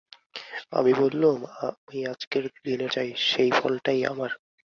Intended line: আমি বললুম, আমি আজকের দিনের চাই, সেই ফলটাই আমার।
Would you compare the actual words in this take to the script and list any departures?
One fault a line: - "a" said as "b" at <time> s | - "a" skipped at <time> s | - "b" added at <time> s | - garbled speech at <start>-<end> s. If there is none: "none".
none